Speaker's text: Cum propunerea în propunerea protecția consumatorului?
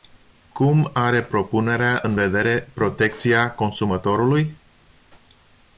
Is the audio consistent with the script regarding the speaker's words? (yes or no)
no